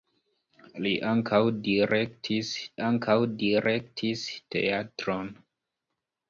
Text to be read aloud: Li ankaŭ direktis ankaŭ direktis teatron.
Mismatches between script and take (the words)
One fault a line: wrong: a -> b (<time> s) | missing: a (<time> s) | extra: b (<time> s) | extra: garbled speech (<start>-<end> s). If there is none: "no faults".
no faults